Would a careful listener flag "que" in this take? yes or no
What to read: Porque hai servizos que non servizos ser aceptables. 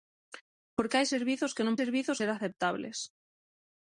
no